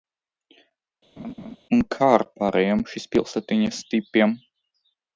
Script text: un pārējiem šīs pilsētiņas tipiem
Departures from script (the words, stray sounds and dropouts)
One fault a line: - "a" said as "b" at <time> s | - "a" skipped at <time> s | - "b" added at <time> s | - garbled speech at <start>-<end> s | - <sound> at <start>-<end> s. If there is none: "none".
- laugh at 1.2-1.6 s
- "kā ar" added at 2.0 s